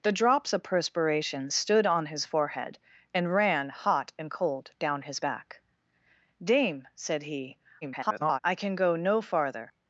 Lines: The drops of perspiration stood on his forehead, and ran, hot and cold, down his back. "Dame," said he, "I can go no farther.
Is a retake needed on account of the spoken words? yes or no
yes